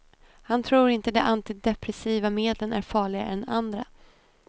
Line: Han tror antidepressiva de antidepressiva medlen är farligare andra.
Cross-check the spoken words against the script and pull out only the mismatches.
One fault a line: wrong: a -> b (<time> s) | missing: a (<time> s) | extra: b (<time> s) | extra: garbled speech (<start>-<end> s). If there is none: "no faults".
wrong: antidepressiva -> inte (0.9 s)
extra: än (3.3 s)